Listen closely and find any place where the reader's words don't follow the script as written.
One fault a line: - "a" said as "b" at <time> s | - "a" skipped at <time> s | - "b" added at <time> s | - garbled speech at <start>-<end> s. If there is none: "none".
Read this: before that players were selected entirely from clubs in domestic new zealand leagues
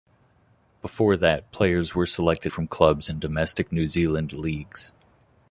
- "entirely" skipped at 2.5 s